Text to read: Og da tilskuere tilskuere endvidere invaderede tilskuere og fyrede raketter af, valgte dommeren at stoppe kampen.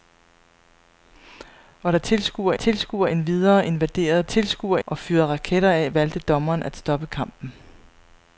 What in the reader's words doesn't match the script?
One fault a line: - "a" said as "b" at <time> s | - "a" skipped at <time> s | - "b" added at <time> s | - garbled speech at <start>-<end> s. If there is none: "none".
none